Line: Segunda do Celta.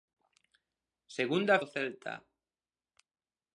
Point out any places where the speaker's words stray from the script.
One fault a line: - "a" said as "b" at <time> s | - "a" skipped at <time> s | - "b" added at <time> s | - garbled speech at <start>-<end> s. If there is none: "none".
none